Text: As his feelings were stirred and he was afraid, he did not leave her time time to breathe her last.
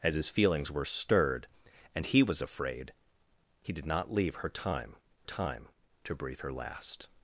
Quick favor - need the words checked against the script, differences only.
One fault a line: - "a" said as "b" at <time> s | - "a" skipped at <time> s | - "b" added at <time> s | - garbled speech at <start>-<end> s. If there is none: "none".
none